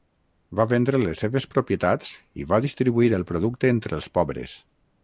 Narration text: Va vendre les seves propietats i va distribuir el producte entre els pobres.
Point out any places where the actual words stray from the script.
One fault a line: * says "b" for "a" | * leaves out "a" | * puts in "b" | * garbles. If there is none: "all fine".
all fine